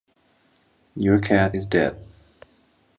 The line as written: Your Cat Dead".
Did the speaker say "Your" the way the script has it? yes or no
yes